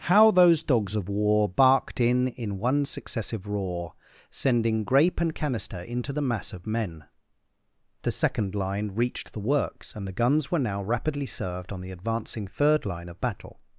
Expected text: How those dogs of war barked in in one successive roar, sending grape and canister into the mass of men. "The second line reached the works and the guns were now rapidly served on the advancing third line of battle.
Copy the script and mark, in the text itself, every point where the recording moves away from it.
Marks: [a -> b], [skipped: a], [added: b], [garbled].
How those dogs of war barked in in one successive roar, sending grape and canister into the mass of men. "The second line reached the works and the guns were now rapidly served on the advancing third line of battle.